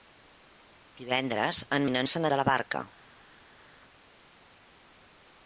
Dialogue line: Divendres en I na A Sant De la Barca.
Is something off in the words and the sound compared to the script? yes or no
no